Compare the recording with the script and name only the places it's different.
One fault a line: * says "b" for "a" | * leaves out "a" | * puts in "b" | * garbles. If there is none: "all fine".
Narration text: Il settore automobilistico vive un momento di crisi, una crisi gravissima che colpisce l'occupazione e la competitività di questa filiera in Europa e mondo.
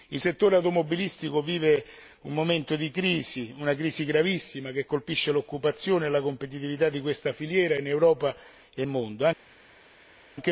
all fine